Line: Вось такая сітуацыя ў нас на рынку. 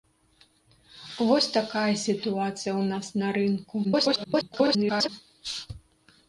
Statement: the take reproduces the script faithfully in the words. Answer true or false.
false